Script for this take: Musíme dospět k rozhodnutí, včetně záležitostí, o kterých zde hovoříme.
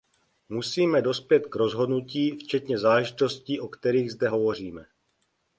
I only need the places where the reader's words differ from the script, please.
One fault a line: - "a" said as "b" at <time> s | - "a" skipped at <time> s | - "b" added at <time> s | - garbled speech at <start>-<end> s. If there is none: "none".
none